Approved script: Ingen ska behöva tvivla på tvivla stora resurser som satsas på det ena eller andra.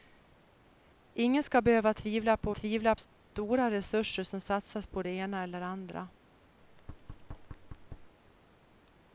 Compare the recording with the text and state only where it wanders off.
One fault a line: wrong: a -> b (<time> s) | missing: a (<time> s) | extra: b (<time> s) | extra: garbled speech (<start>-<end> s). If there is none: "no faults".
no faults